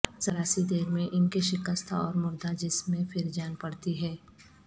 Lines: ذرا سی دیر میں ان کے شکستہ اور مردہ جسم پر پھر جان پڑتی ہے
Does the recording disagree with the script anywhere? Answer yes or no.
yes